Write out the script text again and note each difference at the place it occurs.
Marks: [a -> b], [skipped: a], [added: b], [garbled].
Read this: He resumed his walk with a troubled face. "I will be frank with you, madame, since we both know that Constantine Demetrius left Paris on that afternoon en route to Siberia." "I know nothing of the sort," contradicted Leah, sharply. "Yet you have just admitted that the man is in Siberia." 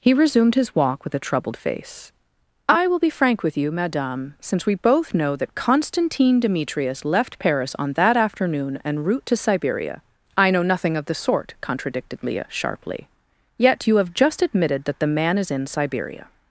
He resumed his walk with a troubled face. "I will be frank with you, madame, since we both know that Constantine Demetrius left Paris on that afternoon en route to Siberia." "I know nothing of the sort," contradicted Leah, sharply. "Yet you have just admitted that the man is in Siberia."